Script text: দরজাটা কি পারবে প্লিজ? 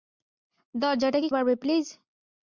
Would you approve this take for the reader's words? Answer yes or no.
yes